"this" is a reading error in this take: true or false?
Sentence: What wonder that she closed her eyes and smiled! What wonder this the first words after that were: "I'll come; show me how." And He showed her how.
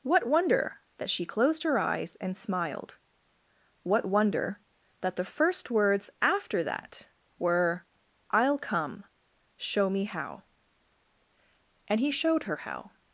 true